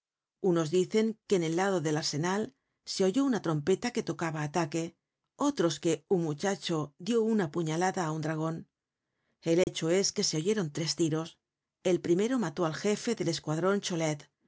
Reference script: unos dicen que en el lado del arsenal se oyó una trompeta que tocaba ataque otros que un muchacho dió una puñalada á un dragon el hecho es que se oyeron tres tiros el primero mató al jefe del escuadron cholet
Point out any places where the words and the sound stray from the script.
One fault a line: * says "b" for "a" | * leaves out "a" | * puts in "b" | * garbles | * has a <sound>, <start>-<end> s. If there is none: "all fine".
* has a dropout, 9.6-9.7 s